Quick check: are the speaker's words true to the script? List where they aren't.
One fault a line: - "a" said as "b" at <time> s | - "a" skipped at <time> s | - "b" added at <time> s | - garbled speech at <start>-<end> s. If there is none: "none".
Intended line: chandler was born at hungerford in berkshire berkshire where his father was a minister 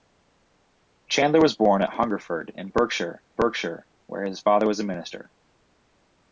none